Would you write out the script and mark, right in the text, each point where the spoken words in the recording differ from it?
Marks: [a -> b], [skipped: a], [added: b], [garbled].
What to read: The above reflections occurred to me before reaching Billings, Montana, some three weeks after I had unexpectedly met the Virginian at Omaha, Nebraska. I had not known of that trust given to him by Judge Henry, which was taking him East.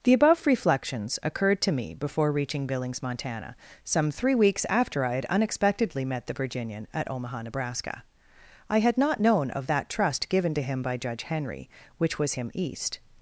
The above reflections occurred to me before reaching Billings, Montana, some three weeks after I had unexpectedly met the Virginian at Omaha, Nebraska. I had not known of that trust given to him by Judge Henry, which was [skipped: taking] him East.